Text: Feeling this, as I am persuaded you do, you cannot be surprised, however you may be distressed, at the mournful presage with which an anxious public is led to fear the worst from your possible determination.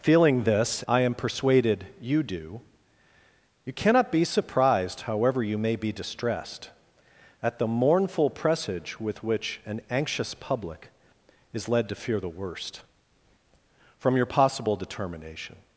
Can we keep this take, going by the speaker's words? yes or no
no